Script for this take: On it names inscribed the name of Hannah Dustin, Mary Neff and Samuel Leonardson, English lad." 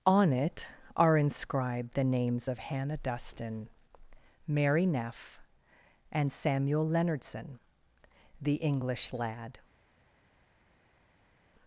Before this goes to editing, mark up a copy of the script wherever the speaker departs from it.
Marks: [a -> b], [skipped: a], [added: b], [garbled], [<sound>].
On it [names -> are] inscribed the [name -> names] of Hannah Dustin, Mary Neff and Samuel Leonardson, [added: the] English lad."